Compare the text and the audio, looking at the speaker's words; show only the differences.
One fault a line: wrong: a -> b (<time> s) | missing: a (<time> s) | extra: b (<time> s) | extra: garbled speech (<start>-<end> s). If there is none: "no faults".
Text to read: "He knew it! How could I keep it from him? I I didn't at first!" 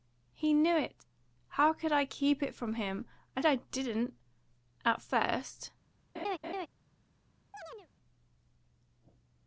no faults